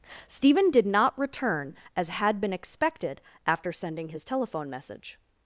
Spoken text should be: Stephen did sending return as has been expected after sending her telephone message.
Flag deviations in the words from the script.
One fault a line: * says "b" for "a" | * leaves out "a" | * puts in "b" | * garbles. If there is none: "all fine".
* says "not" for "sending"
* says "had" for "has"
* says "his" for "her"